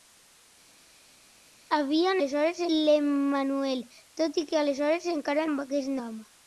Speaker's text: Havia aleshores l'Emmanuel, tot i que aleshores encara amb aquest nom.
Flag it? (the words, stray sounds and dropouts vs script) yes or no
no